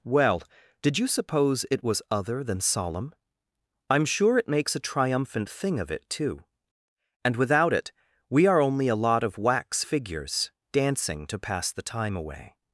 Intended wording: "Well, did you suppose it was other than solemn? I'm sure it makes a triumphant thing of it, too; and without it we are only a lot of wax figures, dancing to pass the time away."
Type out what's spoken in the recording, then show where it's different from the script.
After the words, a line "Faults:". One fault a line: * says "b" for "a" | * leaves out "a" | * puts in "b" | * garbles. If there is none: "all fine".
"Well, did you suppose it was other than solemn? I'm sure it makes a triumphant thing of it, too; and without it we are only a lot of wax figures, dancing to pass the time away."
Faults:
all fine